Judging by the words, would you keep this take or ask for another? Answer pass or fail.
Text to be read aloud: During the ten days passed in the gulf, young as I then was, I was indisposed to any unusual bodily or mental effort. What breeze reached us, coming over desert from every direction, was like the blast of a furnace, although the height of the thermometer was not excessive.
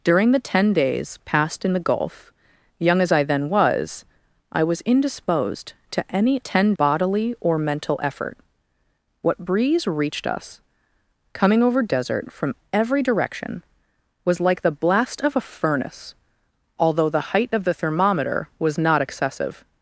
fail